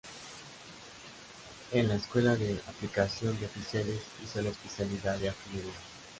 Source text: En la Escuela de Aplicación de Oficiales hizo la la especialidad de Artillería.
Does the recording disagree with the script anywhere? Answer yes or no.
yes